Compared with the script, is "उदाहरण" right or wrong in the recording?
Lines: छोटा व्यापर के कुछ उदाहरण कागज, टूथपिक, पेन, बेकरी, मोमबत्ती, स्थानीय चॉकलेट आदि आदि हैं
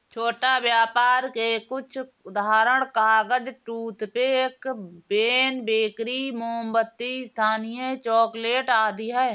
right